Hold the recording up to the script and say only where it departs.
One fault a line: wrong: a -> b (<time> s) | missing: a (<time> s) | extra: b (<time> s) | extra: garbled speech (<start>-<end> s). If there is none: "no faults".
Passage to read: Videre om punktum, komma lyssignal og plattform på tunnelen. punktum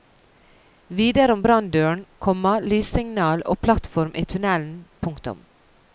wrong: punktum -> branndøren (1.5 s)
wrong: på -> i (4.1 s)